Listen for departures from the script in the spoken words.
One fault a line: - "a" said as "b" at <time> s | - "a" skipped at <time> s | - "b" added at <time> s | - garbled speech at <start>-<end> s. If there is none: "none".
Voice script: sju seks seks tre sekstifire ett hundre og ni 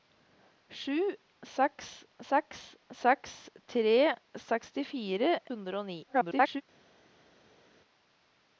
- "seks" added at 3.0 s
- "ett" skipped at 5.3 s
- garbled speech at 6.1-6.6 s